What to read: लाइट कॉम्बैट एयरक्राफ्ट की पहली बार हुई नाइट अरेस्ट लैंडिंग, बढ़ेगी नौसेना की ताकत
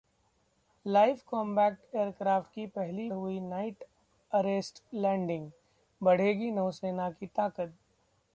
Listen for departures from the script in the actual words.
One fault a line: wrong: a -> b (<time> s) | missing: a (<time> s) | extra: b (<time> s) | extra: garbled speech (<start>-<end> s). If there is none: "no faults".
missing: बार (3.1 s)